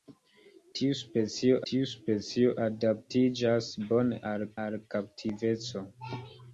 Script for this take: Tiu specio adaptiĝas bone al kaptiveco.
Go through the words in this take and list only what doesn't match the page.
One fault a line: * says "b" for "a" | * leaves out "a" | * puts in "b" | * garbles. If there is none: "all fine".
* puts in "tiu specio"
* puts in "al"